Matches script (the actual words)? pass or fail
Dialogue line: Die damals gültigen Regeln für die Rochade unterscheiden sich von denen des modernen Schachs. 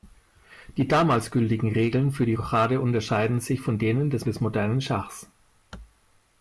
fail